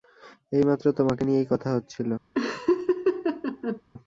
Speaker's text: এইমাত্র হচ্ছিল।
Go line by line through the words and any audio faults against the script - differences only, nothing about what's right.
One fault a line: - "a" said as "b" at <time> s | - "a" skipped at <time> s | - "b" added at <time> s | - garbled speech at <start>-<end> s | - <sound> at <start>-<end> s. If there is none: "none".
- "তোমাকে নিয়েই কথা" added at 0.9 s
- laugh at 2.3-3.8 s